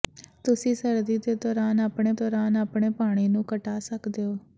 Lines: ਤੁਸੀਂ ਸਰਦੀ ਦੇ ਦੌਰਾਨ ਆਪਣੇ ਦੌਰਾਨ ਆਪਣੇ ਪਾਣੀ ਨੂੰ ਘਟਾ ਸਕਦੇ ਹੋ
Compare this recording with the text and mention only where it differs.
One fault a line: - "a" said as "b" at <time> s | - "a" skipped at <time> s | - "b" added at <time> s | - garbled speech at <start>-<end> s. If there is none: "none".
none